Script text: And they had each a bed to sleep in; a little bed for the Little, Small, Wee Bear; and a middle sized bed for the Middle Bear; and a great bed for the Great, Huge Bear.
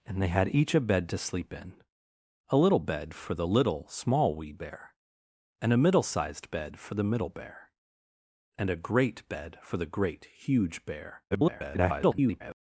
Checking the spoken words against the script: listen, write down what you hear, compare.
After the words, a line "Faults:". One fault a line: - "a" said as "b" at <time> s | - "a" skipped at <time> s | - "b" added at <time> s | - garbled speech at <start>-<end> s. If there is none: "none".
And they had each a bed to sleep in; a little bed for the Little, Small, Wee Bear; and a middle sized bed for the Middle Bear; and a great bed for the Great, Huge Bear. [garbled]
Faults:
- garbled speech at 11.3-12.5 s